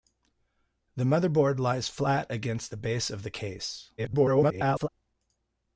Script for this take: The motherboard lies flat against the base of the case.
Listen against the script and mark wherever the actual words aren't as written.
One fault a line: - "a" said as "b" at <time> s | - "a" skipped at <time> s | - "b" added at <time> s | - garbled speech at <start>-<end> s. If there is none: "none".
- garbled speech at 4.0-4.9 s